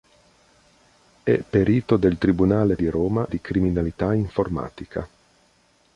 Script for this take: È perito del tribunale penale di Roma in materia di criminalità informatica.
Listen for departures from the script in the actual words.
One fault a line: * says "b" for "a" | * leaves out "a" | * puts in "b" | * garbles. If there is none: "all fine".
* leaves out "penale"
* leaves out "in materia"